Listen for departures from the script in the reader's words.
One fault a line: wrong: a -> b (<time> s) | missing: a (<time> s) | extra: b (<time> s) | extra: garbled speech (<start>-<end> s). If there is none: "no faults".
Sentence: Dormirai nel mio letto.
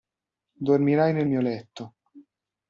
no faults